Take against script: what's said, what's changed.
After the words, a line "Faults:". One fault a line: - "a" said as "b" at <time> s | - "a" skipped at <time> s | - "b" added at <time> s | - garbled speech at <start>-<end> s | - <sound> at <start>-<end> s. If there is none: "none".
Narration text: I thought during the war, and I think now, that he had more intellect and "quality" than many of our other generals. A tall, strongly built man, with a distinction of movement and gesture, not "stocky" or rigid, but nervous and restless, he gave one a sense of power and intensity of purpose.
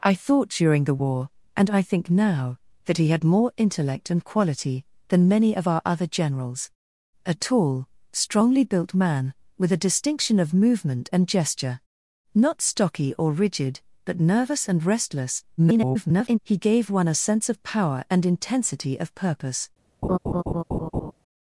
I thought during the war, and I think now, that he had more intellect and "quality" than many of our other generals. A tall, strongly built man, with a distinction of movement and gesture, not "stocky" or rigid, but nervous and restless, [garbled] he gave one a sense of power and intensity of purpose.
Faults:
- garbled speech at 15.6-16.4 s
- laugh at 20.0-21.1 s